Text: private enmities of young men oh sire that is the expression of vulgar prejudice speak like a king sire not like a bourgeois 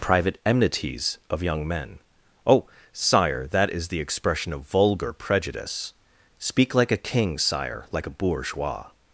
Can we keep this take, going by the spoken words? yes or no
no